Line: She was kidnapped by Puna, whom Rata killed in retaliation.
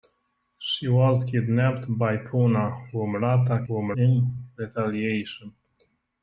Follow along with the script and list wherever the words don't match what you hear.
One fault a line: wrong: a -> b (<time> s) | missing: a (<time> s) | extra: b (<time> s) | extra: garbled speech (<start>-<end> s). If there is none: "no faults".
wrong: killed -> whom (3.6 s)